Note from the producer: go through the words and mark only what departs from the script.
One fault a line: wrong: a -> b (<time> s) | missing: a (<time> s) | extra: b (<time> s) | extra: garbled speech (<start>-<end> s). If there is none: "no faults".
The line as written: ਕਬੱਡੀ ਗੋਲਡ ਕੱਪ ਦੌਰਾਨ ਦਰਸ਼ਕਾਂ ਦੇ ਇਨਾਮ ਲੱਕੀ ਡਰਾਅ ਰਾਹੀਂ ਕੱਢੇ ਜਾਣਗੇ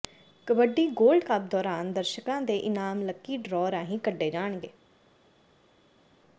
no faults